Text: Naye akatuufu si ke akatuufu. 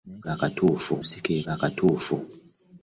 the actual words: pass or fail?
pass